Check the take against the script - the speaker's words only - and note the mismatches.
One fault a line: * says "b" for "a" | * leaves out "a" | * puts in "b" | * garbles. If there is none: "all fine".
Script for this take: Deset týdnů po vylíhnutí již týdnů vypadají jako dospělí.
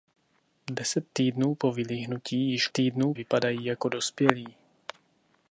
all fine